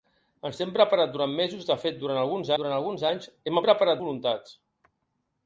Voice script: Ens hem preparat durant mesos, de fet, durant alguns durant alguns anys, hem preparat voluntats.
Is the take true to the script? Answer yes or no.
yes